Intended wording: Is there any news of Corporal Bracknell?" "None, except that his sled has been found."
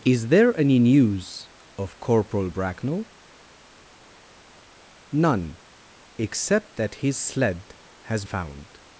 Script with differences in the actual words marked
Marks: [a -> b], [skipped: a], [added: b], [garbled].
Is there any news of Corporal Bracknell?" "None, except that his sled has [skipped: been] found."